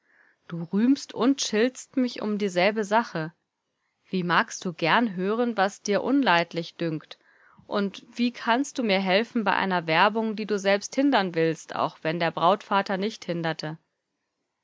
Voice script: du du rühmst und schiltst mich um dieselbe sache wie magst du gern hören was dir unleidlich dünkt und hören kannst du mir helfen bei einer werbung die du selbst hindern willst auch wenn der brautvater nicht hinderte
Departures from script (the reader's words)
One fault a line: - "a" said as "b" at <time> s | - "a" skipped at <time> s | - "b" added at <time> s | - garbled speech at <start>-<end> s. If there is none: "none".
- "du" skipped at 0.6 s
- "hören" said as "wie" at 8.1 s